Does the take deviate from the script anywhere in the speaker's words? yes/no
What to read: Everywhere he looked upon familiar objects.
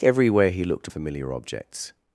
yes